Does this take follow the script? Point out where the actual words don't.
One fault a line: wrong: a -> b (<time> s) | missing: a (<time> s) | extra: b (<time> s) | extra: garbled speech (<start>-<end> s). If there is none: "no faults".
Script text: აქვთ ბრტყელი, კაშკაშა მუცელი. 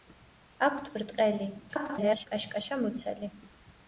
extra: garbled speech (1.7-2.3 s)